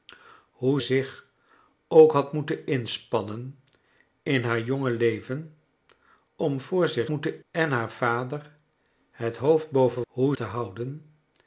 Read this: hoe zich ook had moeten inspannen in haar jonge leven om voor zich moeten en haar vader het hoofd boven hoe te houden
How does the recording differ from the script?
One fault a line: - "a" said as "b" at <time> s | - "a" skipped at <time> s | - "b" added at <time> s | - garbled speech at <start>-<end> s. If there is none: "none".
none